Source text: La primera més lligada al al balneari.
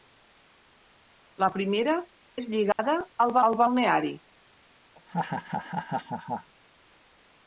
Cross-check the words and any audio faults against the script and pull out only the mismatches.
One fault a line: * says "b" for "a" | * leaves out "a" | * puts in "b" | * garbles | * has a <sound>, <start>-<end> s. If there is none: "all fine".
* has a dropout, 2.7-2.8 s
* has a laugh, 5.0-6.5 s